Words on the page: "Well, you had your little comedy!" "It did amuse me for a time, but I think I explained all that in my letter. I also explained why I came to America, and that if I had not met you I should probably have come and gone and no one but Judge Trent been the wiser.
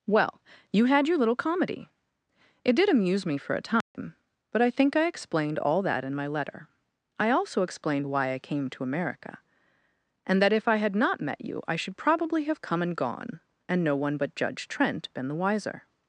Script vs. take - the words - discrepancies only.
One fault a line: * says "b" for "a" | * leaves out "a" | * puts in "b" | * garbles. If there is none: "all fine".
all fine